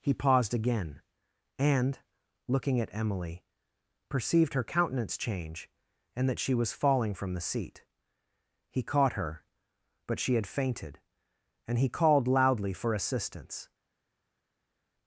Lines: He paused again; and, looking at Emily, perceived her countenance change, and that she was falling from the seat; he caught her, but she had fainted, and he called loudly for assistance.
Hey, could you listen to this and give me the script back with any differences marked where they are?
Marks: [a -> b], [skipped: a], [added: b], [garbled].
He paused again; and, looking at Emily, perceived her countenance change, and that she was falling from the seat; he caught her, but she had fainted, and he called loudly for assistance.